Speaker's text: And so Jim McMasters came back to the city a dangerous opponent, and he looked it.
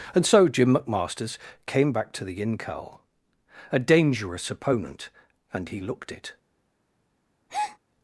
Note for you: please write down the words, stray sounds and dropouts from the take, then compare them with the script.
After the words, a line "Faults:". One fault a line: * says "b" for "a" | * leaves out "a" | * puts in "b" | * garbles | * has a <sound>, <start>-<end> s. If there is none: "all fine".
And so Jim McMasters came back to the incal a dangerous opponent, and he looked it.
Faults:
* says "incal" for "city"
* has a breath, 7.5-7.8 s